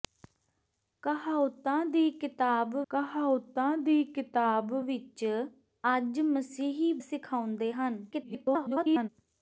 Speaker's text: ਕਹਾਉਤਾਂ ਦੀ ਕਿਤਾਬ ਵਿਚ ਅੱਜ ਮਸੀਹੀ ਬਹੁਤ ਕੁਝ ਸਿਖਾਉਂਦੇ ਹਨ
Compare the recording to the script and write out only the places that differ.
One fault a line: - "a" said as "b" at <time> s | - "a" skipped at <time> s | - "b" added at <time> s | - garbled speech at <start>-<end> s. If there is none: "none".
- "ਕਹਾਉਤਾਂ ਦੀ ਕਿਤਾਬ" added at 2.9 s
- "ਬਹੁਤ ਕੁਝ" skipped at 6.9 s
- garbled speech at 8.1-9.1 s